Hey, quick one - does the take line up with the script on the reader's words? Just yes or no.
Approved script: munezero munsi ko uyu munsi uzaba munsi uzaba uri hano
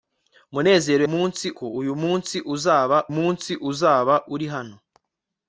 yes